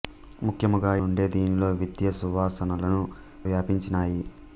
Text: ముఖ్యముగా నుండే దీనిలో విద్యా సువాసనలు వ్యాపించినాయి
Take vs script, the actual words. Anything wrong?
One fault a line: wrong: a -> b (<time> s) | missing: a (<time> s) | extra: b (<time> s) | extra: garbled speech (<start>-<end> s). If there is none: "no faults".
no faults